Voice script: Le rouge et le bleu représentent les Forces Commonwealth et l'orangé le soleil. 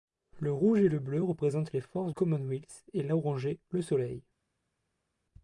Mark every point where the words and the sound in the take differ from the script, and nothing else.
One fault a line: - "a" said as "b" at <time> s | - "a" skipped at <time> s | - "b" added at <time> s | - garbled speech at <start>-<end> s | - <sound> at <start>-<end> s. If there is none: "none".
none